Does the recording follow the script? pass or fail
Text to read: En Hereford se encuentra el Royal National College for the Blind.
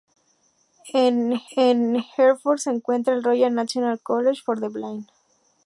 fail